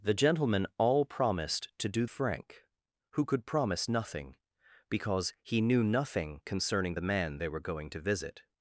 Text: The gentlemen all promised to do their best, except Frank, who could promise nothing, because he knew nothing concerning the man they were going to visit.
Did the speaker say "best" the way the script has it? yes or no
no